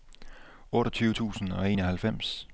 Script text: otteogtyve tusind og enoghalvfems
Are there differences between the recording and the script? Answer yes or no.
no